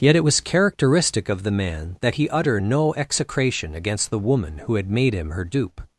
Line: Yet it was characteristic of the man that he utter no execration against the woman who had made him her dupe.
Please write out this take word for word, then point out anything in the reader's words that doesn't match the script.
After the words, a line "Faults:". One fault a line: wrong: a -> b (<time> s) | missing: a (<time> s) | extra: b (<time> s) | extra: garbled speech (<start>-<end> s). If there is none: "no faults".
Yet it was characteristic of the man that he utter no execration against the woman who had made him her dupe.
Faults:
no faults